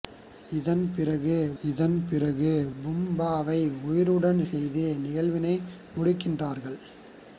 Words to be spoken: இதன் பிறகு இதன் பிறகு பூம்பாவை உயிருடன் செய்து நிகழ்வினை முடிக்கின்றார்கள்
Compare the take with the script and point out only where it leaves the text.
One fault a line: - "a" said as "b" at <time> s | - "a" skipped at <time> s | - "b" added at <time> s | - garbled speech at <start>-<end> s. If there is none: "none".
none